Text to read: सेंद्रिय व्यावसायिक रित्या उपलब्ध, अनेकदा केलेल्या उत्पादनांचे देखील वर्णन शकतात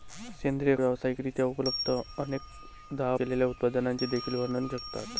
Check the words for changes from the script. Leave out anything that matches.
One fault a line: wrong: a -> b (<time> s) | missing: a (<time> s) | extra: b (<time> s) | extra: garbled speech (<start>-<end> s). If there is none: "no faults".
no faults